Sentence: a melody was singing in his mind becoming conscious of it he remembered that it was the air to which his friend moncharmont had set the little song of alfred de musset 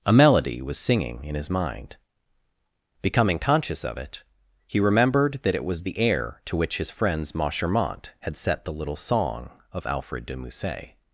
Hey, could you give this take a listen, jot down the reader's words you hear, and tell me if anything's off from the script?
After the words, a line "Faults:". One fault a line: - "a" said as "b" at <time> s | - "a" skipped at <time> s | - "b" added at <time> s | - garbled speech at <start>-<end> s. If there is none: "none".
a melody was singing in his mind becoming conscious of it he remembered that it was the air to which his friends moncharmont had set the little song of alfred de musset
Faults:
- "friend" said as "friends" at 6.9 s